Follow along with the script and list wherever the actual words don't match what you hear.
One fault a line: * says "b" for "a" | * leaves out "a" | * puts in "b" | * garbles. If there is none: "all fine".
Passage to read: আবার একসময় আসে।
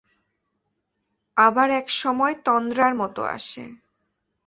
* puts in "তন্দ্রার মতো"